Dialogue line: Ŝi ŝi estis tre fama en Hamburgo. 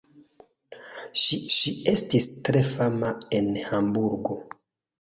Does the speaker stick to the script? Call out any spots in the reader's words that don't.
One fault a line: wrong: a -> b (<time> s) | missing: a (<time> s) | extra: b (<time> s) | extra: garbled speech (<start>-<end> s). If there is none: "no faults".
no faults